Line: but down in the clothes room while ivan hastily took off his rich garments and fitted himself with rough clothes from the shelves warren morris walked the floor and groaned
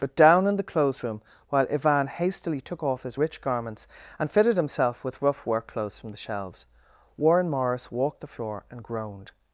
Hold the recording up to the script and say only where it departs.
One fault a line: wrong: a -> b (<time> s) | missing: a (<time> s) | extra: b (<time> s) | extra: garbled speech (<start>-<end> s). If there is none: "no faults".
extra: work (5.4 s)